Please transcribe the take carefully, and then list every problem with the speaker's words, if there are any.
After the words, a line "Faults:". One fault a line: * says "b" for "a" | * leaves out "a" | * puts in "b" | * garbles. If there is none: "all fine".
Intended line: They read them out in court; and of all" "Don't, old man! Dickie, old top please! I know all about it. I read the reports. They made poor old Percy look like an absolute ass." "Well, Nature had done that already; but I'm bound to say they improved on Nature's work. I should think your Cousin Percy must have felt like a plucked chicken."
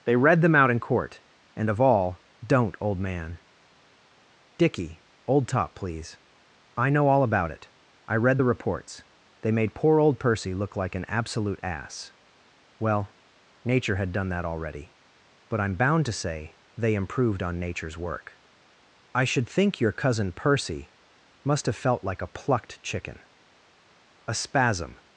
They read them out in court; and of all" "Don't, old man! Dickie, old top please! I know all about it. I read the reports. They made poor old Percy look like an absolute ass." "Well, Nature had done that already; but I'm bound to say they improved on Nature's work. I should think your Cousin Percy must have felt like a plucked chicken." A spasm
Faults:
* puts in "A spasm"